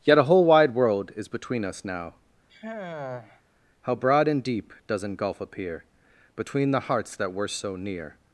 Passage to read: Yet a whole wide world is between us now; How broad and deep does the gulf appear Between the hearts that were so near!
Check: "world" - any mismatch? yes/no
no